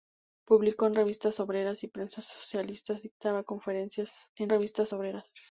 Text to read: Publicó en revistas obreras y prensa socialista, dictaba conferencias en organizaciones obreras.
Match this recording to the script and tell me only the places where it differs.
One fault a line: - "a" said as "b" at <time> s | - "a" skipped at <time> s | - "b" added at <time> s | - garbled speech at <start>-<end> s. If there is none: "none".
- "organizaciones" said as "revistas" at 4.5 s